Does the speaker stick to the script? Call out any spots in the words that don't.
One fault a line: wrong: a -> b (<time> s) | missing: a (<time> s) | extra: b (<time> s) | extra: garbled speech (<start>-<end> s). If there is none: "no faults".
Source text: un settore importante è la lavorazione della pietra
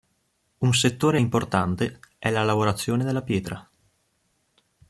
no faults